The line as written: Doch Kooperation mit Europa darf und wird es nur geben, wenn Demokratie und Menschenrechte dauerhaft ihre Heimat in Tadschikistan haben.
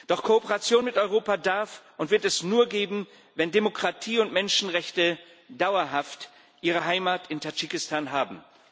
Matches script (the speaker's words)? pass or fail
pass